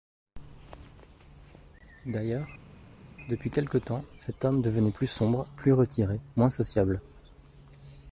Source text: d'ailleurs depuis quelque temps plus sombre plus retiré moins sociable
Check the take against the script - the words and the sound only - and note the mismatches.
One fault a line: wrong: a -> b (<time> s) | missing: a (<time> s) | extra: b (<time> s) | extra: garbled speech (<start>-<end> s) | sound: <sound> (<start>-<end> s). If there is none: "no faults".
extra: cet homme devenait (4.2 s)